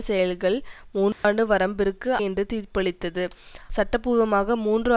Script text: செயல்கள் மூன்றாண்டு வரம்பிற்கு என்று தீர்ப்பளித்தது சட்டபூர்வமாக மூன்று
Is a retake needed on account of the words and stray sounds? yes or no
yes